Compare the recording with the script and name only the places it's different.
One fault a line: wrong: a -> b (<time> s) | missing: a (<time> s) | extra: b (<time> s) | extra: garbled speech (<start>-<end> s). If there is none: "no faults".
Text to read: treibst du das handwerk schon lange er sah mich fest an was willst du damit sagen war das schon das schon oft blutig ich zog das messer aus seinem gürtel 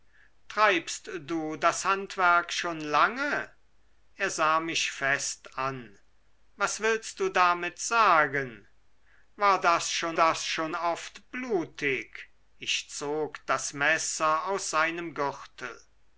no faults